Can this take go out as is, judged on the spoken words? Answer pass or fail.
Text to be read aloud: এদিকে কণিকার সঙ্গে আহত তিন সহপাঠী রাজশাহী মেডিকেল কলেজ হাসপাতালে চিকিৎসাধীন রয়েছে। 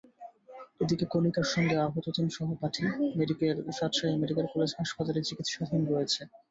pass